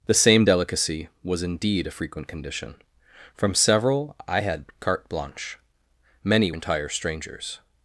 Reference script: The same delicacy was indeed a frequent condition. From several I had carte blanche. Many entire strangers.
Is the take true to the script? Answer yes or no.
yes